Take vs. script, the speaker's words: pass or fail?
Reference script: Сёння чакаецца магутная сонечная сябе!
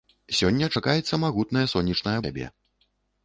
pass